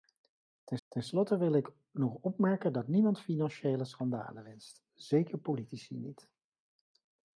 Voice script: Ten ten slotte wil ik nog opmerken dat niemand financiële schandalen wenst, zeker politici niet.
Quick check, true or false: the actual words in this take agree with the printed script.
true